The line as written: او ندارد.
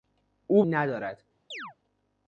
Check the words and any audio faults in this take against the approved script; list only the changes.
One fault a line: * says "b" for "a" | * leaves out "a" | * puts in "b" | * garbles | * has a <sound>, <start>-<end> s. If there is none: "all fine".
* has a chirp, 1.5-1.7 s